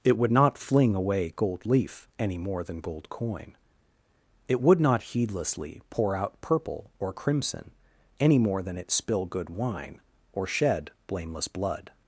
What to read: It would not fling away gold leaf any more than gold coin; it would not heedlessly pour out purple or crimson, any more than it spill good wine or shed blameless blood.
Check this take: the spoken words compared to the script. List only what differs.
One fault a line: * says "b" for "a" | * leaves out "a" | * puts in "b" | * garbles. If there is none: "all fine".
all fine